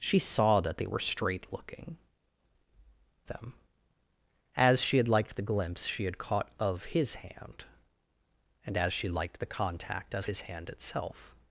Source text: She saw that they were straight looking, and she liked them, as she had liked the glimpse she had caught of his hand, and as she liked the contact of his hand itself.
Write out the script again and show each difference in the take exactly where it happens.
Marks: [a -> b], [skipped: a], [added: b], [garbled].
She saw that they were straight looking, [skipped: and she liked] them, as she had liked the glimpse she had caught of his hand, and as she liked the contact of his hand itself.